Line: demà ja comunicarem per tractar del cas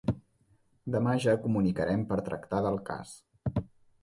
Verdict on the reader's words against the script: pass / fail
pass